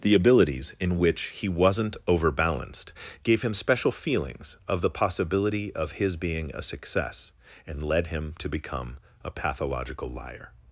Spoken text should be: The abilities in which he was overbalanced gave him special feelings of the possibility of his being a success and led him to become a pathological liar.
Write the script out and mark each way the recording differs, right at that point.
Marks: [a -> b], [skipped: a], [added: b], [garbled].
The abilities in which he [was -> wasn't] overbalanced gave him special feelings of the possibility of his being a success and led him to become a pathological liar.